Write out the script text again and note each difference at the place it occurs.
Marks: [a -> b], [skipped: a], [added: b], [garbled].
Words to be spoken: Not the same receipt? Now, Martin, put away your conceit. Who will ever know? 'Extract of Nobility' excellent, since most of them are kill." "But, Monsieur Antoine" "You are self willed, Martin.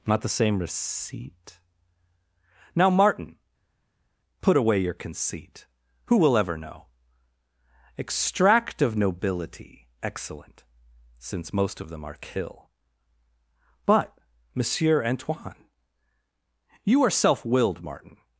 Not the same receipt? Now, Martin, put away your conceit. Who will ever know? 'Extract of Nobility' excellent, since most of them are kill." "But, Monsieur Antoine" "You are self willed, Martin.